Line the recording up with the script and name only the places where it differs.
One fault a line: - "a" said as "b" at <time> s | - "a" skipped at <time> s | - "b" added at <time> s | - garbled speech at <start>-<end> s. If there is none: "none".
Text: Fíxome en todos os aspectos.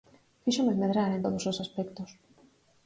- "medrar" added at 0.8 s